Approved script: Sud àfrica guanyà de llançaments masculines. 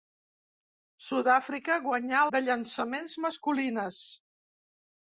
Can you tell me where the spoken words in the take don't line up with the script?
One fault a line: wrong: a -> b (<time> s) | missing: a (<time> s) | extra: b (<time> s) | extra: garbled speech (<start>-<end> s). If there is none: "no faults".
no faults